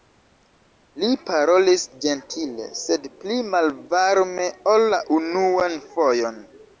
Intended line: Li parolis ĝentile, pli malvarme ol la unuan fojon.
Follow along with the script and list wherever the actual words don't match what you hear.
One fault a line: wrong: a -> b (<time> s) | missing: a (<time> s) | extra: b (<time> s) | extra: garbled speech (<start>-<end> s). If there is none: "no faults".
extra: sed (2.8 s)